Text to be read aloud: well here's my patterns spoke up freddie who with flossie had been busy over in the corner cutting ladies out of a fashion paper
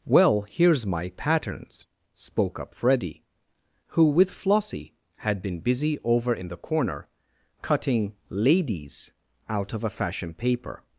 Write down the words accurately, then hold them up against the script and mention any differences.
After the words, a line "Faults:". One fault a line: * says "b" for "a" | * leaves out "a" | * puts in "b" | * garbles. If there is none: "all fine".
well here's my patterns spoke up freddie who with flossie had been busy over in the corner cutting ladies out of a fashion paper
Faults:
all fine